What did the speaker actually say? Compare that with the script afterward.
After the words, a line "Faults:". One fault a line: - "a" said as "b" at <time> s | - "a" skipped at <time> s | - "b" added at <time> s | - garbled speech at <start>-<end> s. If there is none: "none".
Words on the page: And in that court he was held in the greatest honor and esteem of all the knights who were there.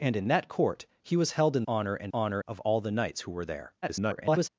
And in that court he was held in honor and honor of all the knights who were there. [garbled]
Faults:
- "the greatest" skipped at 1.6 s
- "esteem" said as "honor" at 2.1 s
- garbled speech at 3.8-4.5 s